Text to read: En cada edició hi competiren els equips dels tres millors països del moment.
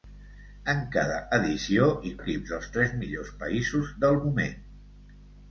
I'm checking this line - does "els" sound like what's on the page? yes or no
no